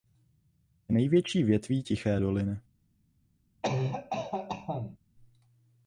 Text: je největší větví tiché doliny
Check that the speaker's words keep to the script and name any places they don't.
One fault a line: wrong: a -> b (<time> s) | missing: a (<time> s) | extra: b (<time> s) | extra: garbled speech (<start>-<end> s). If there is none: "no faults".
no faults